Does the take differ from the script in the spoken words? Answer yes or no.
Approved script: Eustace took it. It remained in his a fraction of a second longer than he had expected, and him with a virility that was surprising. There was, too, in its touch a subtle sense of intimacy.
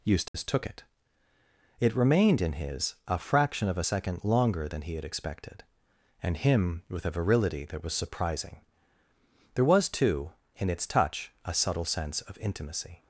no